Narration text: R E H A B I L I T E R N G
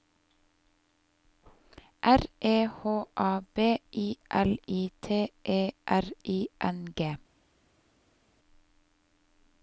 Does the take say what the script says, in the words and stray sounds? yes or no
no